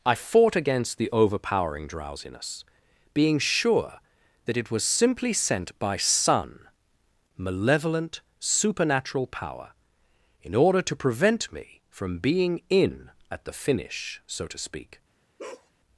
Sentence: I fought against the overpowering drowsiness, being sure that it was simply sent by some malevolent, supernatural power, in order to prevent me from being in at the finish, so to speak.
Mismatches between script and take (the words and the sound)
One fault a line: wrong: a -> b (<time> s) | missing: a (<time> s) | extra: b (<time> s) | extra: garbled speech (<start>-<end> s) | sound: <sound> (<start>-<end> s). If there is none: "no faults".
wrong: some -> sun (6.0 s)
sound: bark (15.4-15.7 s)